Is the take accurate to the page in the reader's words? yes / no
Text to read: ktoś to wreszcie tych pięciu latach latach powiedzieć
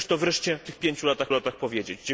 yes